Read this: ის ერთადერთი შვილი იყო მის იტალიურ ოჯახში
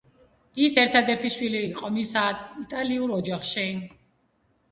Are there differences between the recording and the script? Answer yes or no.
no